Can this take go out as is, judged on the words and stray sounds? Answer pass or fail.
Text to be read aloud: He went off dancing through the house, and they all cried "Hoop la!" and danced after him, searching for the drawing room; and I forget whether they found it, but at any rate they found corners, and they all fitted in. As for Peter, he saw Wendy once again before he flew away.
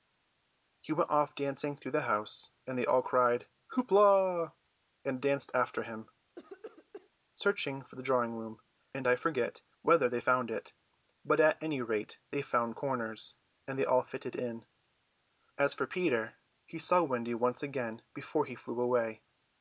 fail